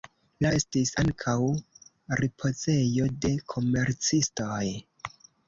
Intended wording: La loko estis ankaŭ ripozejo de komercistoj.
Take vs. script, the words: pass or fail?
fail